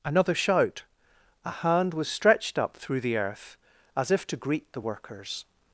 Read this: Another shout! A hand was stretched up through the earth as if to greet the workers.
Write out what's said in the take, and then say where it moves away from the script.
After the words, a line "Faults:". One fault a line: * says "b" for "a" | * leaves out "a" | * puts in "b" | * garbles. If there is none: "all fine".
Another shout! A hand was stretched up through the earth as if to greet the workers.
Faults:
all fine